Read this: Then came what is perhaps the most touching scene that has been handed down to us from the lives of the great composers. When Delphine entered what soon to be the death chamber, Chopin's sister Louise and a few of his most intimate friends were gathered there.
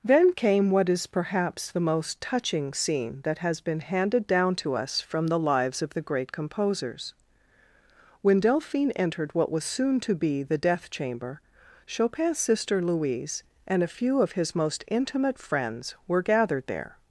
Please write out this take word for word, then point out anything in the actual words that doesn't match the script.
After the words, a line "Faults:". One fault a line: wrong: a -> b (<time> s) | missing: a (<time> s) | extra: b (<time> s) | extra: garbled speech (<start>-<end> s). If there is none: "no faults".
Then came what is perhaps the most touching scene that has been handed down to us from the lives of the great composers. When Delphine entered what was soon to be the death chamber, Chopin's sister Louise and a few of his most intimate friends were gathered there.
Faults:
extra: was (9.5 s)